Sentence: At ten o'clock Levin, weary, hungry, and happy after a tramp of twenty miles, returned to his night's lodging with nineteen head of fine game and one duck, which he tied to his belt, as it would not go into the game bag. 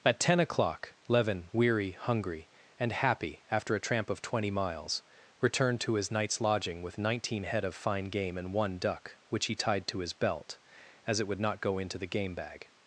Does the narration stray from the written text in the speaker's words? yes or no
no